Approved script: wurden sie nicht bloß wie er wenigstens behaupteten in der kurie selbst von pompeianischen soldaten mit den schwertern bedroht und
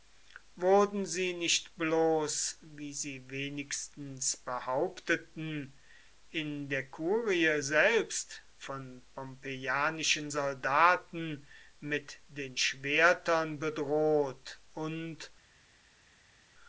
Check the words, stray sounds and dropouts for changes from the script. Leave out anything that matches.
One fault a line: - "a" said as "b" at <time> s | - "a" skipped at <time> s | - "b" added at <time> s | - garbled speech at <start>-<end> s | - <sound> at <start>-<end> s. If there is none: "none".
- "er" said as "sie" at 2.9 s